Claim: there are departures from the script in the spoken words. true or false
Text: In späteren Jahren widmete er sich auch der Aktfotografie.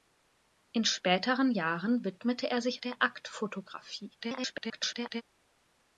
true